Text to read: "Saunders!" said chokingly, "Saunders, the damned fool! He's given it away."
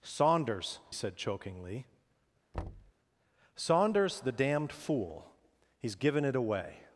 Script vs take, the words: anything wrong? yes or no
no